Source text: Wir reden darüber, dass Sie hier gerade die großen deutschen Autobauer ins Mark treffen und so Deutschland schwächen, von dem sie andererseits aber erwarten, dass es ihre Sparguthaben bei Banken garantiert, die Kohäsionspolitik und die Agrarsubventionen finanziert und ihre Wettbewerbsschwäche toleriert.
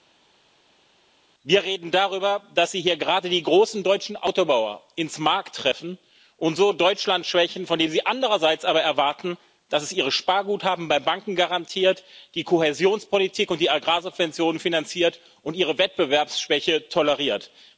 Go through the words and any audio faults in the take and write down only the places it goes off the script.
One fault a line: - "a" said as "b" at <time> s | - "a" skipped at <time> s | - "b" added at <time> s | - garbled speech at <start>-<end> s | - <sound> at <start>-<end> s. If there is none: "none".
none